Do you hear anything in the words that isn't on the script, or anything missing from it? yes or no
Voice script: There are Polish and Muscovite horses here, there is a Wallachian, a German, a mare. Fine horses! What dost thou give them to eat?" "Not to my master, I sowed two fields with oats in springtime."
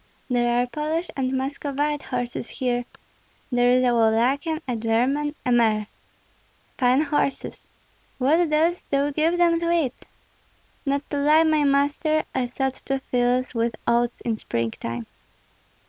yes